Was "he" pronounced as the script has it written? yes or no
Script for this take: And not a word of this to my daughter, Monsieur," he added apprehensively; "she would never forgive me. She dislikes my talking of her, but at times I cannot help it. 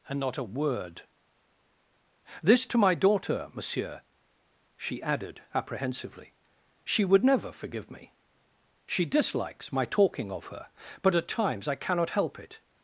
no